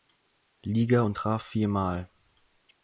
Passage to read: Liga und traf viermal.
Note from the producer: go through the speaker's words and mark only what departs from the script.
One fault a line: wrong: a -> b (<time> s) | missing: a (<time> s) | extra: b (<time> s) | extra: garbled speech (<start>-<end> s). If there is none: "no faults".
no faults